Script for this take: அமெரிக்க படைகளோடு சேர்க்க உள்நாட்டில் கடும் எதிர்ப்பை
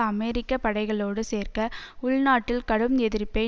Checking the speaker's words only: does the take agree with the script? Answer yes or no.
yes